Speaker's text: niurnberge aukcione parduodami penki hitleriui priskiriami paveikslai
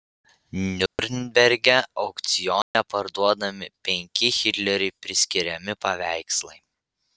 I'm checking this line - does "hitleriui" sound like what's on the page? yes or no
yes